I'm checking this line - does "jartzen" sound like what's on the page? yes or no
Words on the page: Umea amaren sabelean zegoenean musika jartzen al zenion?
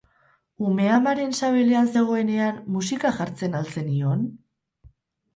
yes